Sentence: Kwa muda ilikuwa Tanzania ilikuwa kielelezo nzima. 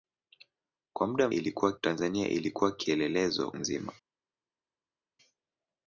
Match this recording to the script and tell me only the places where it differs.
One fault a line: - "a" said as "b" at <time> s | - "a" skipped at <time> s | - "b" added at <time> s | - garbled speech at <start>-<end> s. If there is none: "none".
none